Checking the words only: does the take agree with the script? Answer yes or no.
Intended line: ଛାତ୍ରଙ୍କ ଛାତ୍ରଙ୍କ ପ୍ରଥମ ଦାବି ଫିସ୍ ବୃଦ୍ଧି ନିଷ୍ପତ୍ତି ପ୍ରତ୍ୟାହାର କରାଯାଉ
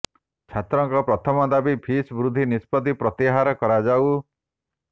no